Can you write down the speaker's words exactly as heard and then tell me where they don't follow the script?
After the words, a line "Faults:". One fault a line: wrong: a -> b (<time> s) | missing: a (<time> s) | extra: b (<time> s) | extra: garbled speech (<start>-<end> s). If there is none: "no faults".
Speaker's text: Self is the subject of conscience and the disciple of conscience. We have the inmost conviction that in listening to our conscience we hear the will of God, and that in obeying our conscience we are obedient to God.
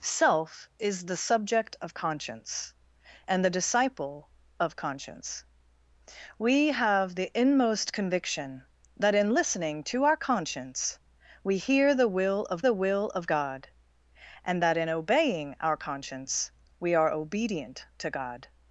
Self is the subject of conscience and the disciple of conscience. We have the inmost conviction that in listening to our conscience we hear the will of the will of God, and that in obeying our conscience we are obedient to God.
Faults:
extra: the will of (12.6 s)